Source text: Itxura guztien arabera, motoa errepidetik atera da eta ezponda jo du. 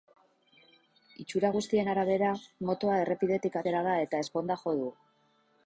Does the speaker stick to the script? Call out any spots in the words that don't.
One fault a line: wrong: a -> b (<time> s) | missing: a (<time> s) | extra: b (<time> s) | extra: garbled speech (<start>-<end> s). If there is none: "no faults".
no faults